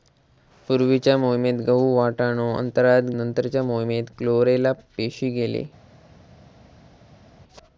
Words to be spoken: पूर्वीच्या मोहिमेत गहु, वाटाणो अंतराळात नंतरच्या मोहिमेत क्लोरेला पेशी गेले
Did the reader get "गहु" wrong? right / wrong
right